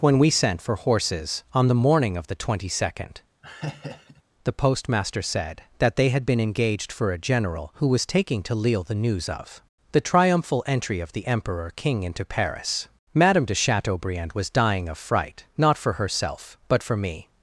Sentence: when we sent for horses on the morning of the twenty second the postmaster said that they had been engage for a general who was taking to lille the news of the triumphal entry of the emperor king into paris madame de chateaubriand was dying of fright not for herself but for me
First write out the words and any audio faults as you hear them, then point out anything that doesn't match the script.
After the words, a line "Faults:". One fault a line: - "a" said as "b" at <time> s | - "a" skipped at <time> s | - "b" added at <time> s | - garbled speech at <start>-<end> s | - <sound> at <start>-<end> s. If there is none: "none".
when we sent for horses on the morning of the twenty second the postmaster said that they had been engaged for a general who was taking to lille the news of the triumphal entry of the emperor king into paris madame de chateaubriand was dying of fright not for herself but for me
Faults:
- laugh at 3.4-4.2 s
- "engage" said as "engaged" at 6.4 s